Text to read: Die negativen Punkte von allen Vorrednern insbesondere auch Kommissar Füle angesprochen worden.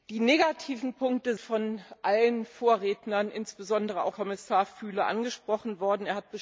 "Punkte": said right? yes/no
yes